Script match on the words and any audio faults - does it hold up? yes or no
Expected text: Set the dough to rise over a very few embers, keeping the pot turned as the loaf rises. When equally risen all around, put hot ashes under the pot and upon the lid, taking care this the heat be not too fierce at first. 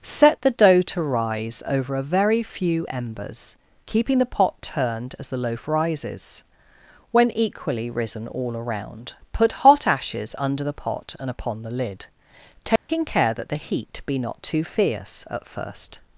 no